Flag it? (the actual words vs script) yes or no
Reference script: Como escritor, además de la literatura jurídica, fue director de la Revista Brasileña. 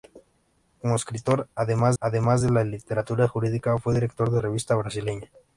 yes